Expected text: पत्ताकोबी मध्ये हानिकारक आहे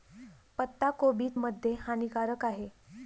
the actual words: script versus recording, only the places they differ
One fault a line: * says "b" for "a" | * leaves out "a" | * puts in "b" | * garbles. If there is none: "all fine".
all fine